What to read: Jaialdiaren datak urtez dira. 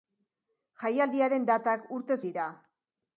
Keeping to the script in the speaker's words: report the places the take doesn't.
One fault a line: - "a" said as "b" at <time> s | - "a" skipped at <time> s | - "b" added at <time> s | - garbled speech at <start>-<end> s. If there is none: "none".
none